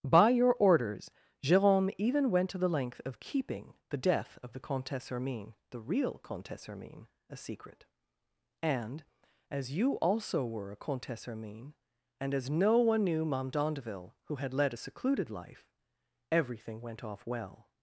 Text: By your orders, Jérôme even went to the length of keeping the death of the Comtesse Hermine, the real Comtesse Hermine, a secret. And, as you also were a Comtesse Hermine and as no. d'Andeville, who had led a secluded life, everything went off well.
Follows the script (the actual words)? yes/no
no